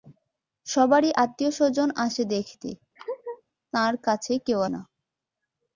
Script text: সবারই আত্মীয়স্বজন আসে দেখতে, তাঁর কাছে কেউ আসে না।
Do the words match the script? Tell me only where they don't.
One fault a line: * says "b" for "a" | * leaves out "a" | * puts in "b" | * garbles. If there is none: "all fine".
* leaves out "আসে"